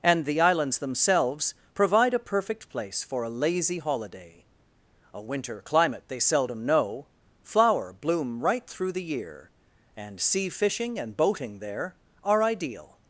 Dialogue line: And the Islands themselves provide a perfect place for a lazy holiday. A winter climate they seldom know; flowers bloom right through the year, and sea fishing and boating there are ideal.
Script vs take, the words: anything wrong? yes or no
yes